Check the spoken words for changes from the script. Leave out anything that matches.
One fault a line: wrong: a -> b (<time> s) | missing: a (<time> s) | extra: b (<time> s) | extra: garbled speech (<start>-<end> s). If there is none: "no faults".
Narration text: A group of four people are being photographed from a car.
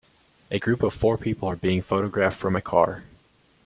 no faults